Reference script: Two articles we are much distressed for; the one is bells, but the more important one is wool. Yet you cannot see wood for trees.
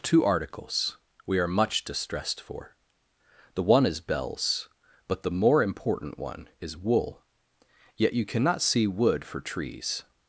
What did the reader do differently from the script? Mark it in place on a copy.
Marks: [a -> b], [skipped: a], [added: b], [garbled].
Two articles we are much distressed for; the one is bells, but the more important one is wool. Yet you cannot see wood for trees.